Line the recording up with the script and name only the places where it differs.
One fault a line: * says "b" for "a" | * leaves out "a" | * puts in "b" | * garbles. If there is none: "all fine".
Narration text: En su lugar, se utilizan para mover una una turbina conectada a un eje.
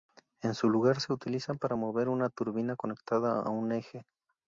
* leaves out "una"